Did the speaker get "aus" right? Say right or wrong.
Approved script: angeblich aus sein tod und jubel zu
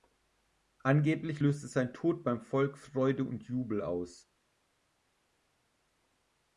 wrong